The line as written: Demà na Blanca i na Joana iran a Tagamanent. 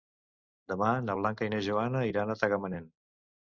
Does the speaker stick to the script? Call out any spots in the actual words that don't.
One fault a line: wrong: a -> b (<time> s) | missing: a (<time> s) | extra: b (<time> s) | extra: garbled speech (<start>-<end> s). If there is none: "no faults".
no faults